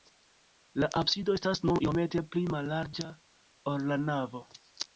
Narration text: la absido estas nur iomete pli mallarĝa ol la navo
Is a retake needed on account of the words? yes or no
no